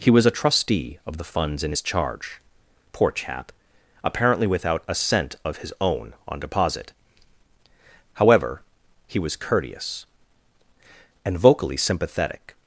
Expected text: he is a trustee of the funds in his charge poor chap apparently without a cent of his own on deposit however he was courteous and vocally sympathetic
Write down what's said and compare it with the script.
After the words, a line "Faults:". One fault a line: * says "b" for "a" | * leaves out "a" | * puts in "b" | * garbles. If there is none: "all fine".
he was a trustee of the funds in his charge poor chap apparently without a cent of his own on deposit however he was courteous and vocally sympathetic
Faults:
* says "was" for "is"